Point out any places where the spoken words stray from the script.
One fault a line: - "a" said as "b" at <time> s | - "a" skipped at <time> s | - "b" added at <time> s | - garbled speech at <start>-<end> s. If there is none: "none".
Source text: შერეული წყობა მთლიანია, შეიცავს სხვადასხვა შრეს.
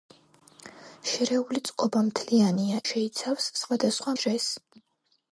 none